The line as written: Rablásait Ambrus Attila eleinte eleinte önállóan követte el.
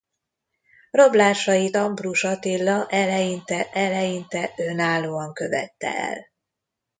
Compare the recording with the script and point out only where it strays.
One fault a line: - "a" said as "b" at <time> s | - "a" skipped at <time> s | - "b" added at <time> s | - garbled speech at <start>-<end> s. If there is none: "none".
none